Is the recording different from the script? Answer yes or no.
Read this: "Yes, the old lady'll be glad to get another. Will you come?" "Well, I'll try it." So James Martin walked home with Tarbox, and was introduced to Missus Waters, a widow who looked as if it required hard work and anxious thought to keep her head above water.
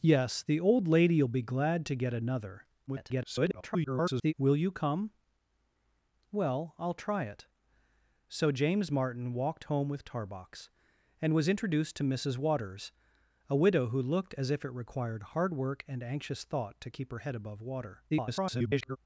yes